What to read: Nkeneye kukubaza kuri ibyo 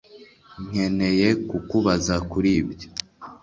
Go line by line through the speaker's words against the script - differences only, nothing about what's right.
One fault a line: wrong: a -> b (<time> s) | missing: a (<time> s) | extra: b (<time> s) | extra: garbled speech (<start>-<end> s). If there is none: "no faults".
no faults